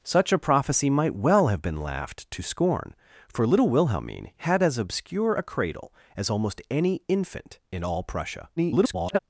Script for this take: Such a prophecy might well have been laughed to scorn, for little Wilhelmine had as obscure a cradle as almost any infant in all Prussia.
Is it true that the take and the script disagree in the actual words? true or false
true